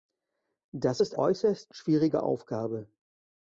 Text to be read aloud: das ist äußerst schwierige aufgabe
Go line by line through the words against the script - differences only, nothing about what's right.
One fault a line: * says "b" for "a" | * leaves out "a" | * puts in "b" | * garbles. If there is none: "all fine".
all fine